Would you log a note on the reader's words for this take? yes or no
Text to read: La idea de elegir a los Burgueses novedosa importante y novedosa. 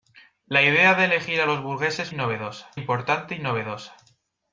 no